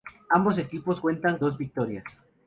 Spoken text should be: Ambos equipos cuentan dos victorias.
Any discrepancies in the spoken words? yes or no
no